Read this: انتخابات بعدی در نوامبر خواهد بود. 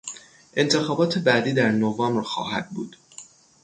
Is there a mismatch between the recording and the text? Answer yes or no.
no